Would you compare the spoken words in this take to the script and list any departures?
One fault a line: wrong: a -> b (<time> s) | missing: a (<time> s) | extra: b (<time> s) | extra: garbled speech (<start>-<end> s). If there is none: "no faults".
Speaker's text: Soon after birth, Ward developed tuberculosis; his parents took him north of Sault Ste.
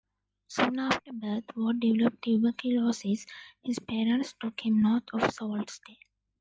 no faults